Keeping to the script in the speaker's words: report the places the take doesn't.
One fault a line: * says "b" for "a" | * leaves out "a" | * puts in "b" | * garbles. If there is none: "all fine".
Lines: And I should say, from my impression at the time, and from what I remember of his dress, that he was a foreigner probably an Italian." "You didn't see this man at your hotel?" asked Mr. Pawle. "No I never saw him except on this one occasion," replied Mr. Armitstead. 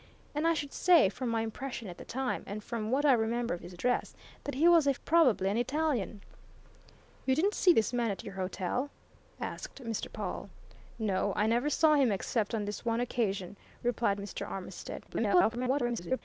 * leaves out "foreigner"
* garbles